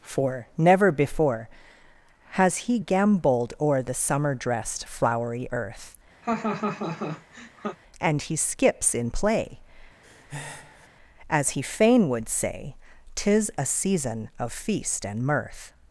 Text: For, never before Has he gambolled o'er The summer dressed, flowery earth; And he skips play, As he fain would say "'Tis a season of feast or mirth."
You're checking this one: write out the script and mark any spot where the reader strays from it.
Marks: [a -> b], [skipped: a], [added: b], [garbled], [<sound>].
For, never before Has he gambolled o'er The summer dressed, flowery earth; [laugh] And he skips [added: in] play, [breath] As he fain would say "'Tis a season of feast [or -> and] mirth."